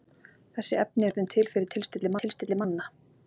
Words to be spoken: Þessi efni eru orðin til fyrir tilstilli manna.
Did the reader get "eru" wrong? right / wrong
wrong